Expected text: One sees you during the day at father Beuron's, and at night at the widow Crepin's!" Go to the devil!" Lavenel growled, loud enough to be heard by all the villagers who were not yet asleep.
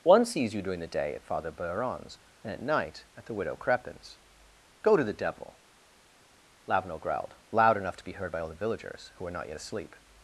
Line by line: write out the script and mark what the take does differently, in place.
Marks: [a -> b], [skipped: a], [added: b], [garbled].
One sees you during the day at father Beuron's, and at night at the widow Crepin's!" Go to the devil!" Lavenel growled, loud enough to be heard by all the villagers who were not yet asleep.